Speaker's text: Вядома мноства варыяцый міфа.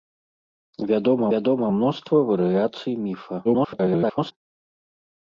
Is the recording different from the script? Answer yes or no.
yes